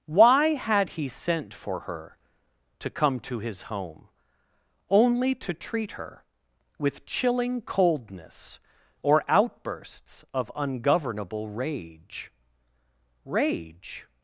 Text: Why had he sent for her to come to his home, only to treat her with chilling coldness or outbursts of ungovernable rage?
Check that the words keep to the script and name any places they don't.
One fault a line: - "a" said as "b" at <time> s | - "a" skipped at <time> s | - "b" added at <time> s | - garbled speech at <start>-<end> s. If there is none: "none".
- "rage" added at 13.3 s